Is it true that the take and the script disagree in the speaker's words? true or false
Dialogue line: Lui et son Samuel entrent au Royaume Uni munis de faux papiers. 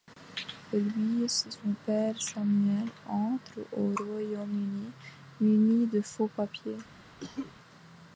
true